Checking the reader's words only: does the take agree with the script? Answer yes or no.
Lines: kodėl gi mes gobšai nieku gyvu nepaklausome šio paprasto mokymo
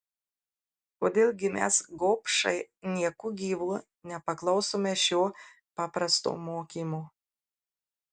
yes